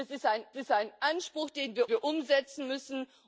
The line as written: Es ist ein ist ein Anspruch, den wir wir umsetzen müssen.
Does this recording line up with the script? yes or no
yes